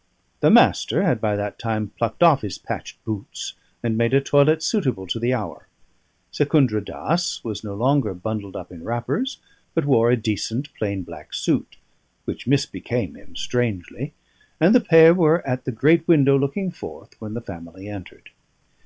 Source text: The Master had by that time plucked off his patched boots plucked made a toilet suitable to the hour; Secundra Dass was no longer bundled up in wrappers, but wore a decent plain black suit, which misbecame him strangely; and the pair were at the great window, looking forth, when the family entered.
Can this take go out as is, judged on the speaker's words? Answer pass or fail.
fail